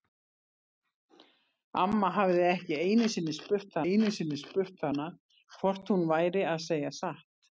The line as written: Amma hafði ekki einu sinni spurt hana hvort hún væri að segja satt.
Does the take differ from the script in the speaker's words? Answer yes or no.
yes